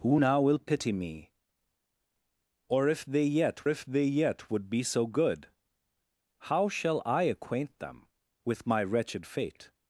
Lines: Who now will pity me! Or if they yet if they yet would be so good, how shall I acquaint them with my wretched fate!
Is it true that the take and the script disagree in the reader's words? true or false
false